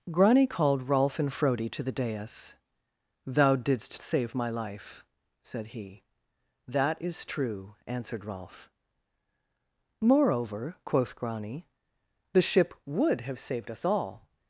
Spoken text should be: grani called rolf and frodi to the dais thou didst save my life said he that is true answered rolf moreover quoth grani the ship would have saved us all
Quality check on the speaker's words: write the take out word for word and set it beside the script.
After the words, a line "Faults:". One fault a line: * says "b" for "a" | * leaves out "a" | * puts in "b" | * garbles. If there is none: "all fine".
grani called rolf and frodi to the dais thou didst save my life said he that is true answered rolf moreover quoth grani the ship would have saved us all
Faults:
all fine